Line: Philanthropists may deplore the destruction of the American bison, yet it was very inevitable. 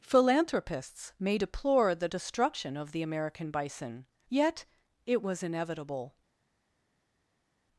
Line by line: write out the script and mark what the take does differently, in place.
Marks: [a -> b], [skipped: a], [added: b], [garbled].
Philanthropists may deplore the destruction of the American bison, yet it was [skipped: very] inevitable.